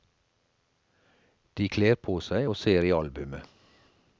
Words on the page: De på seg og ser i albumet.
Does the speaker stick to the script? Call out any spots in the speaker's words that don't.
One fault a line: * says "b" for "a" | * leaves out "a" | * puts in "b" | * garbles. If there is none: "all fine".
* puts in "kler"